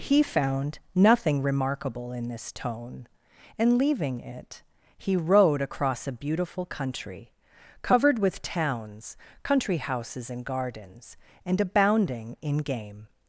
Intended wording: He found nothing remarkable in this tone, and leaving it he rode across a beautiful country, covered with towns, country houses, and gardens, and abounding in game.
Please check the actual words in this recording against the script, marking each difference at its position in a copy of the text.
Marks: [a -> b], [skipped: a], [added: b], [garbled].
He found nothing remarkable in this tone, and leaving it he rode across a beautiful country, covered with towns, country houses, and gardens, and abounding in game.